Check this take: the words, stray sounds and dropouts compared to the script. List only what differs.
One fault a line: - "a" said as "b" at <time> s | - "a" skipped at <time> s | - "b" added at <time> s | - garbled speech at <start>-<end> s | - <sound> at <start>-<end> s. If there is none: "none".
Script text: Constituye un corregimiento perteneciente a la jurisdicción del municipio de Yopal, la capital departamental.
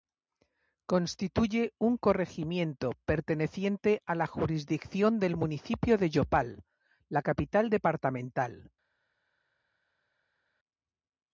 none